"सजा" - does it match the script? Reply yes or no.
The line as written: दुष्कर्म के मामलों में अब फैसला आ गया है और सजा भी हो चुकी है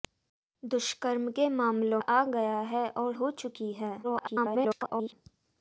no